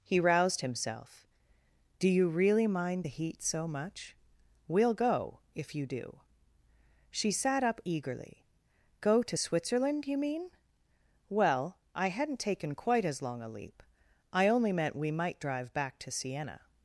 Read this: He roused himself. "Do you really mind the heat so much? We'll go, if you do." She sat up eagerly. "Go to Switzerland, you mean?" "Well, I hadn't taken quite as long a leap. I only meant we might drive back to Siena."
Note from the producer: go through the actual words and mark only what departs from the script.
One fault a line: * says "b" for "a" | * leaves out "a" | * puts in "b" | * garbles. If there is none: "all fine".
all fine